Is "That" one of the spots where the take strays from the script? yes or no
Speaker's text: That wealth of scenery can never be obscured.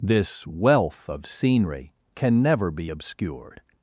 yes